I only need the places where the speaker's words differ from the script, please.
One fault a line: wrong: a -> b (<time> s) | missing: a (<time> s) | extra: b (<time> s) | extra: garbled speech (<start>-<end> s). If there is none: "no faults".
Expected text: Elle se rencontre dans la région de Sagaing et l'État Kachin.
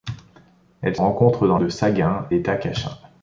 missing: se (0.9 s)
missing: la région (1.6 s)
missing: et (2.3 s)